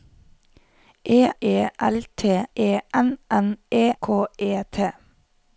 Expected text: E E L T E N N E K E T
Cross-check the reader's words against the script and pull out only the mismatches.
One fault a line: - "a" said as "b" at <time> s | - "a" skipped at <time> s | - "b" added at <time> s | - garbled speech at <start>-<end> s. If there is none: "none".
none